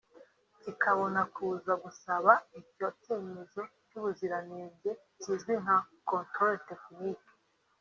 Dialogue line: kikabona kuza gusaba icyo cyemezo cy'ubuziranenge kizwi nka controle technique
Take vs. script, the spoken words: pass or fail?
pass